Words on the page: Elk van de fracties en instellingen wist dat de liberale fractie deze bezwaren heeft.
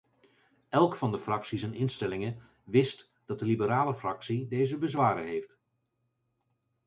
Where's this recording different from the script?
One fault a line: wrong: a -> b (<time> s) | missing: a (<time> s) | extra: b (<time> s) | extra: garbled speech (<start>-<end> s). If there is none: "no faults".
no faults